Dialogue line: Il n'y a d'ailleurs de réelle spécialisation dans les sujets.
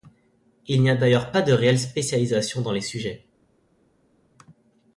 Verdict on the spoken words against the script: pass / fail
fail